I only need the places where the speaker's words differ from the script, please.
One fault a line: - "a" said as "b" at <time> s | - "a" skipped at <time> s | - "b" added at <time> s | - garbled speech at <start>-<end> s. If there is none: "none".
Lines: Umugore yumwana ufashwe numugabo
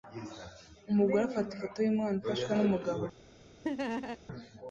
- "afata ifoto" added at 1.2 s